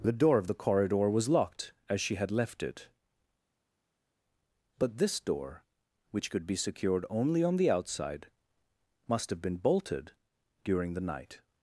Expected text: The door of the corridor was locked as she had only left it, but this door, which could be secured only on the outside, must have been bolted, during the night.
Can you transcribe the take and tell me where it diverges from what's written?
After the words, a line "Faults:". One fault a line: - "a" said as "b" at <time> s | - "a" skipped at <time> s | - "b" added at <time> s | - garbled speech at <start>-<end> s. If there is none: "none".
The door of the corridor was locked as she had left it, but this door, which could be secured only on the outside, must have been bolted, during the night.
Faults:
- "only" skipped at 2.3 s